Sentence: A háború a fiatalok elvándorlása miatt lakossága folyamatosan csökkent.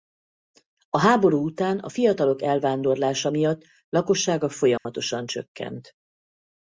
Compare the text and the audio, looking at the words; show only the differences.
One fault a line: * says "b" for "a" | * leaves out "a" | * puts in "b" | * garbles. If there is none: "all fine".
* puts in "után"